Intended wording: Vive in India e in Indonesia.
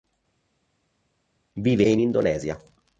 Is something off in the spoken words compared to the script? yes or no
yes